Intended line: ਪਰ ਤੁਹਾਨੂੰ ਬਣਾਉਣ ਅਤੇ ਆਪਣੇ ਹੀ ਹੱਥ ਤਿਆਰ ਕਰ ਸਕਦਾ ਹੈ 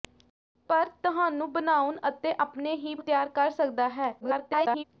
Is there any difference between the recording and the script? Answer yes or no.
yes